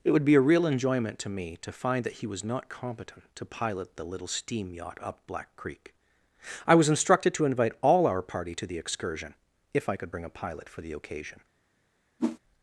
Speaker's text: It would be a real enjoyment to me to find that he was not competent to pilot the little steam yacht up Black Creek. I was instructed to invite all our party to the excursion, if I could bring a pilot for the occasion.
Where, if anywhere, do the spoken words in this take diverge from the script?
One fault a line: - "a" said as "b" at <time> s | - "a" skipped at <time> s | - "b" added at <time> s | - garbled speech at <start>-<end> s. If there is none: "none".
none